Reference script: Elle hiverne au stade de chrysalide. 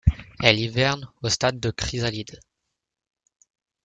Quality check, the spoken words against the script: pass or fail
pass